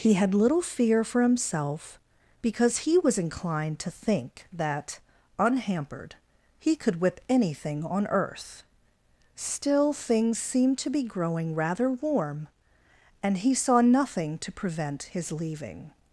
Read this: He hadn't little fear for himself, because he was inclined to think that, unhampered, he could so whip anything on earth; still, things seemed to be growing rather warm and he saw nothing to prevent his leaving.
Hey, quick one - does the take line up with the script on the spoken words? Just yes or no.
no